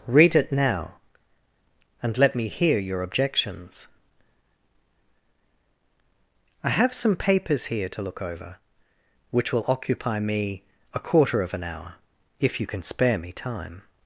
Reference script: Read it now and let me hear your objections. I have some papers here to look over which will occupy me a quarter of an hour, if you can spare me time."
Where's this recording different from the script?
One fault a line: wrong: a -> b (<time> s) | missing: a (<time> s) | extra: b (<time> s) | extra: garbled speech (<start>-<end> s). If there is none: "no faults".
no faults